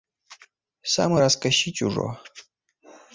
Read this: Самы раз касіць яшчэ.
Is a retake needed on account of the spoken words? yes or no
yes